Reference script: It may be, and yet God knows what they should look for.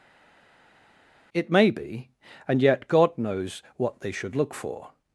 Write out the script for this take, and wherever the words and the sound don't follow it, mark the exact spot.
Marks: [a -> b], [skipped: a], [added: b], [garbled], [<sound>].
It may be, and yet God knows what they should look for.